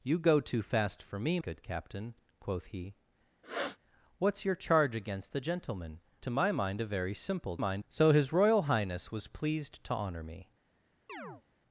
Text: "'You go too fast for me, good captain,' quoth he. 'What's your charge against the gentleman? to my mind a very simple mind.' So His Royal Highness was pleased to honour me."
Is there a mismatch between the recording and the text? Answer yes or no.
no